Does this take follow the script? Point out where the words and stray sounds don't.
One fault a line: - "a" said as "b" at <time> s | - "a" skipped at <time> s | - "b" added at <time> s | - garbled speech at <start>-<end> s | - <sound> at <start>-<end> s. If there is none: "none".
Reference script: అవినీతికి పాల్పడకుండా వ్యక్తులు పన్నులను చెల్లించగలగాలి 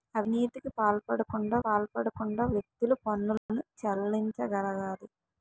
- "పాల్పడకుండా" added at 1.6 s
- dropout at 3.4-3.5 s